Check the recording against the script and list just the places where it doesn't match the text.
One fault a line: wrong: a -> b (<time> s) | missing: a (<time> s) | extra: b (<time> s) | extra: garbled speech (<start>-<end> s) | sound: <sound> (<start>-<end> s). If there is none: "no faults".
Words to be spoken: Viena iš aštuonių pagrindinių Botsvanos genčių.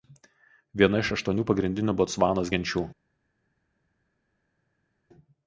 no faults